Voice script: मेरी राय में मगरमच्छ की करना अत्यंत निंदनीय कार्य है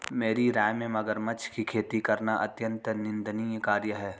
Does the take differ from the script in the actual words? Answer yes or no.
yes